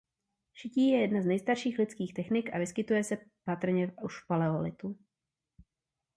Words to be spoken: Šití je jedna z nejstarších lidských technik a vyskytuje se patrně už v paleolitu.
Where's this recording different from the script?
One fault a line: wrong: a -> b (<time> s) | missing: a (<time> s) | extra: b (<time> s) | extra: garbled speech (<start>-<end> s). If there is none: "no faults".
no faults